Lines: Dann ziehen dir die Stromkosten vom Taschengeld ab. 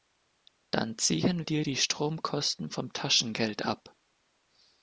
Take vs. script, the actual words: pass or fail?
pass